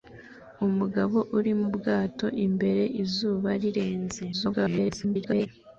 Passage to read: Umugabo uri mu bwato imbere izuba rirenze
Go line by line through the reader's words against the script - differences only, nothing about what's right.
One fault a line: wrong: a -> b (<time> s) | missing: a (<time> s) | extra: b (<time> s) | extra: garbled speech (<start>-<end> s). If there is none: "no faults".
extra: garbled speech (4.3-5.5 s)